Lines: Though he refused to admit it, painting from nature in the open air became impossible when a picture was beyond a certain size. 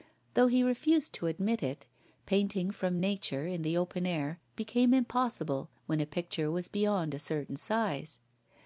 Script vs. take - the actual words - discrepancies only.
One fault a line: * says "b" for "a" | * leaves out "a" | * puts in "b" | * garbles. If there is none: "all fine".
all fine